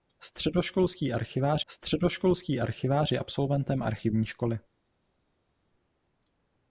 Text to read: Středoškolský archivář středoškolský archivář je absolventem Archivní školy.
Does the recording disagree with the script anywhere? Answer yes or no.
no